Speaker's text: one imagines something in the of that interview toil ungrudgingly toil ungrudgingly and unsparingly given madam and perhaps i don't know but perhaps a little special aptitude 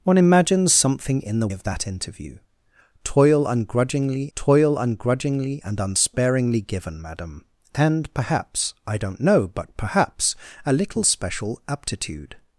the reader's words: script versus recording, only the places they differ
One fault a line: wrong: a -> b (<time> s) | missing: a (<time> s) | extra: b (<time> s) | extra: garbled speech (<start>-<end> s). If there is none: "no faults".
no faults